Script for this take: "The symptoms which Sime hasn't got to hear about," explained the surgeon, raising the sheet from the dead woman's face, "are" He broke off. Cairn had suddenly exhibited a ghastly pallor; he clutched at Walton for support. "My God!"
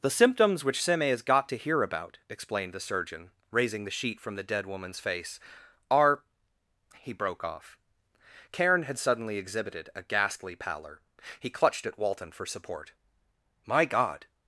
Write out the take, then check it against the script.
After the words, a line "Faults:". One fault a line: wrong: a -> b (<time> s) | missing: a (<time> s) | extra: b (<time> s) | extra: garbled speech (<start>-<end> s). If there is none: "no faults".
"The symptoms which Sime has got to hear about," explained the surgeon, raising the sheet from the dead woman's face, "are" He broke off. Cairn had suddenly exhibited a ghastly pallor; he clutched at Walton for support. "My God!"
Faults:
wrong: hasn't -> has (1.0 s)